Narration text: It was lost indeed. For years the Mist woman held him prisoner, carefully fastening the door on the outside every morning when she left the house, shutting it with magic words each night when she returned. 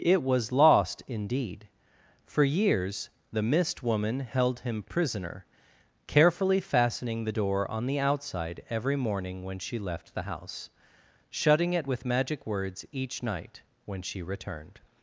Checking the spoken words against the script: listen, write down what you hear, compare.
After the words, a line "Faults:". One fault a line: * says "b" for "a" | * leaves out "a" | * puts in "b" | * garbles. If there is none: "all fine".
It was lost indeed. For years the Mist woman held him prisoner, carefully fastening the door on the outside every morning when she left the house, shutting it with magic words each night when she returned.
Faults:
all fine